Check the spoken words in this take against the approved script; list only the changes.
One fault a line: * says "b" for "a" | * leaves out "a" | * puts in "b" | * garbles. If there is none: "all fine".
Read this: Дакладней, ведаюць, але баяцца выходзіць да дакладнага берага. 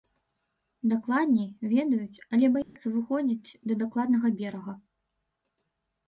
all fine